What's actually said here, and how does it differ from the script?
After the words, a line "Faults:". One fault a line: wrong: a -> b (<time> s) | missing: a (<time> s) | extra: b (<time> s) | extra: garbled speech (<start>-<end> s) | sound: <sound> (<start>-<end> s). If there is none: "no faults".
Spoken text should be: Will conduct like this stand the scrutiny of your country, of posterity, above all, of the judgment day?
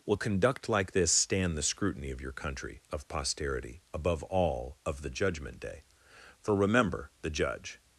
Will conduct like this stand the scrutiny of your country, of posterity, above all, of the judgment day? For remember, the Judge
Faults:
extra: For remember the Judge (6.4 s)